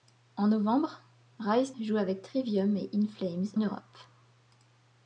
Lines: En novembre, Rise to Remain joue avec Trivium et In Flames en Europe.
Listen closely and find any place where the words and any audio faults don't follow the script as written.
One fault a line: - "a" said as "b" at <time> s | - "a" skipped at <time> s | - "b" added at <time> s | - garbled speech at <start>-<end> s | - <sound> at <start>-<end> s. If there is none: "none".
- "to Remain" skipped at 1.7 s
- "en" skipped at 3.5 s